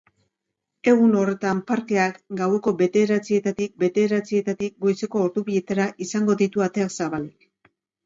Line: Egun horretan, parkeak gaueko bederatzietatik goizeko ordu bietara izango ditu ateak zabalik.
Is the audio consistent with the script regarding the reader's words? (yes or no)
no